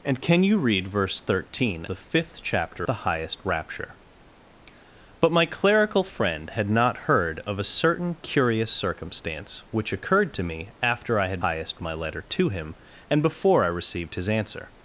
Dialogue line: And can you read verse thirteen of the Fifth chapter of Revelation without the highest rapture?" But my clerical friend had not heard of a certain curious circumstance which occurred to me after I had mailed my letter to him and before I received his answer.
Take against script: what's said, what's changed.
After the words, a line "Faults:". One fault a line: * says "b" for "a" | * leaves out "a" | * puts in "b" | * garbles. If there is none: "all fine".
And can you read verse thirteen the Fifth chapter the highest rapture?" But my clerical friend had not heard of a certain curious circumstance which occurred to me after I had highest my letter to him and before I received his answer.
Faults:
* leaves out "of"
* leaves out "of Revelation without"
* says "highest" for "mailed"